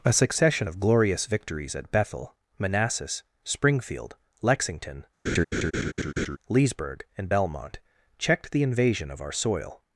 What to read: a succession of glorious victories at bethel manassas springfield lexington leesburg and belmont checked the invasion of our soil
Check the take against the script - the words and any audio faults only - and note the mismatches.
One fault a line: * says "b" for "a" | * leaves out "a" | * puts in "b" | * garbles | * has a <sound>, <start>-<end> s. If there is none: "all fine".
* has a laugh, 5.3-6.4 s